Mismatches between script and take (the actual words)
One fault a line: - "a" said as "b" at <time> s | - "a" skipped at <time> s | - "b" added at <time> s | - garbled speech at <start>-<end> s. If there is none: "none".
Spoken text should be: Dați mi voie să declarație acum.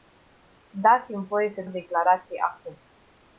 none